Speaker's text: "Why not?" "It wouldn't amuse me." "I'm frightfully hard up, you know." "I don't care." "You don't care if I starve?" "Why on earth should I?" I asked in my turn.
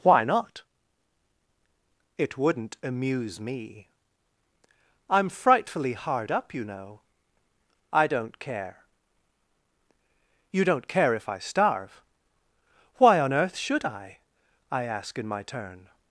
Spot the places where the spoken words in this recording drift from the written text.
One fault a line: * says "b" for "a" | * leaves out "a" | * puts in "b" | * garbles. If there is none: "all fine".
* says "ask" for "asked"